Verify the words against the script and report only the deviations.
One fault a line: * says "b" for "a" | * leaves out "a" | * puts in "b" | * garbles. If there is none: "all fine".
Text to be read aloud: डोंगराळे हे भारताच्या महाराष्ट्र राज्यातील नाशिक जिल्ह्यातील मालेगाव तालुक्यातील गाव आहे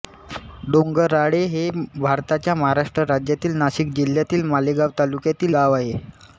all fine